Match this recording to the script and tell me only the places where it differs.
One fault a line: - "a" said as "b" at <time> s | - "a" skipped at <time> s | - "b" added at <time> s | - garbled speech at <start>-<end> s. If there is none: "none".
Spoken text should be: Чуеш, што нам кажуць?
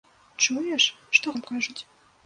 none